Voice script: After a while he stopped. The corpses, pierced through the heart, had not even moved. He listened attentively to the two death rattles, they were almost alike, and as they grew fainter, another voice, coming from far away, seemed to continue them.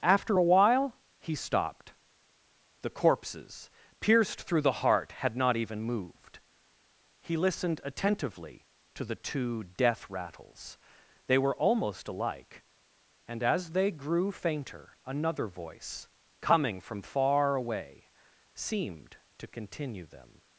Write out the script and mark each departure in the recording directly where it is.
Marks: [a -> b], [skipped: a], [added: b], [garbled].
After a while he stopped. The corpses, pierced through the heart, had not even moved. He listened attentively to the two death rattles, they were almost alike, and as they grew fainter, another voice, coming from far away, seemed to continue them.